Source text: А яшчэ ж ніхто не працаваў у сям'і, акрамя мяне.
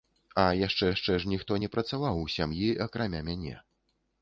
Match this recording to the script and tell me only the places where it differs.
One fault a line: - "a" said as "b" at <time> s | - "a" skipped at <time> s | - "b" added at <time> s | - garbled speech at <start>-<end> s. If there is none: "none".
- "яшчэ" added at 0.9 s